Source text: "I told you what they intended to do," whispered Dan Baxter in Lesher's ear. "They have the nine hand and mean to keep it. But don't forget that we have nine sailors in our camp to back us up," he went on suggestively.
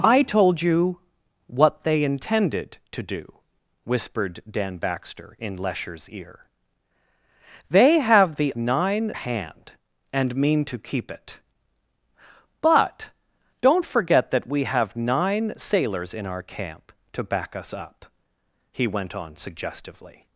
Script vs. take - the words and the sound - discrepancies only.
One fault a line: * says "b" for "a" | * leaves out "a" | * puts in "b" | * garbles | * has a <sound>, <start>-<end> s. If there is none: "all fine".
all fine